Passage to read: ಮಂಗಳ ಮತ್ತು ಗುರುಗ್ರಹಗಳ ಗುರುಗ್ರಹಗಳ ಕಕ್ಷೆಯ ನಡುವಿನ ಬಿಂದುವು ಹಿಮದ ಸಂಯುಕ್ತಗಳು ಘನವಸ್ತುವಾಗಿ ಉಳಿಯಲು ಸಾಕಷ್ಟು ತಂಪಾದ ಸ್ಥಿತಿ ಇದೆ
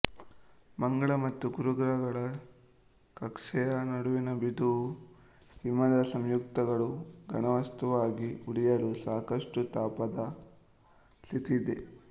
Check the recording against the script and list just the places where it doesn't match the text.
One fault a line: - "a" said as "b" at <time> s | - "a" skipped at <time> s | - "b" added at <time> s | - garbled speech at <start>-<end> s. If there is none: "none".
- "ಗುರುಗ್ರಹಗಳ" skipped at 2.2 s